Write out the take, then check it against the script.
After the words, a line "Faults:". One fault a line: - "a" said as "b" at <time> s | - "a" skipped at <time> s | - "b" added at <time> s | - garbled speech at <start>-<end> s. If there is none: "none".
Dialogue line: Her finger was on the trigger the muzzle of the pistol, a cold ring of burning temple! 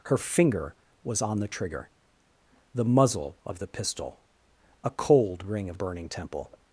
Her finger was on the trigger the muzzle of the pistol, a cold ring of burning temple!
Faults:
none